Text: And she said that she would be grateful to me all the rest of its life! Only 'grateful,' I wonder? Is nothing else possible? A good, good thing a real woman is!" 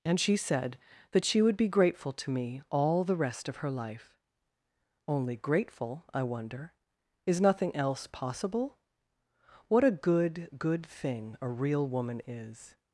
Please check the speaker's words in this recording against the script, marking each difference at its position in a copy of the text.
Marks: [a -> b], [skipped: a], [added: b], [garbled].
And she said that she would be grateful to me all the rest of [its -> her] life! Only 'grateful,' I wonder? Is nothing else possible? [added: What] A good, good thing a real woman is!"